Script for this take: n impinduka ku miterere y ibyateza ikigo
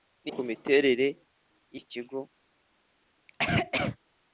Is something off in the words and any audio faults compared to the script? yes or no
yes